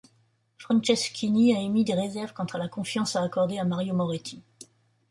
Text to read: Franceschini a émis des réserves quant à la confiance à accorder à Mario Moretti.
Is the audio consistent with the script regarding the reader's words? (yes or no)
yes